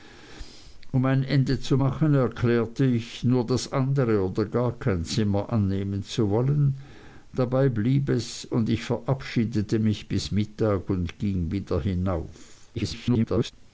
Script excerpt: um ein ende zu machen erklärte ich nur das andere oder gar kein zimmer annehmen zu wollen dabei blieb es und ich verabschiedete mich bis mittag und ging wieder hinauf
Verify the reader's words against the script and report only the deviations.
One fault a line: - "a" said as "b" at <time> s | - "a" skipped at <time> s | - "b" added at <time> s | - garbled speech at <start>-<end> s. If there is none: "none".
- garbled speech at 12.8-13.5 s